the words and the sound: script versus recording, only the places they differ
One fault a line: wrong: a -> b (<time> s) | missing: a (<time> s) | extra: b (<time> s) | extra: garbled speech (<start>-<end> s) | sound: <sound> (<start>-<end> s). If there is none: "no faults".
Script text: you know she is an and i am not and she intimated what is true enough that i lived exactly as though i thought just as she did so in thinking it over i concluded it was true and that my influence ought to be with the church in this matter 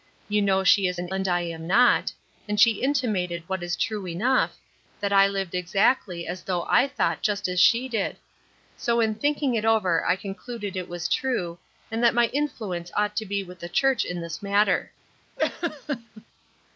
sound: laugh (15.4-16.2 s)